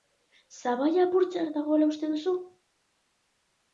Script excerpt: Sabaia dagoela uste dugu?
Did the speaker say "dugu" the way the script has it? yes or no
no